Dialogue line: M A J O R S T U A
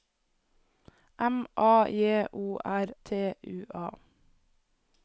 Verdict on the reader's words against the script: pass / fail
fail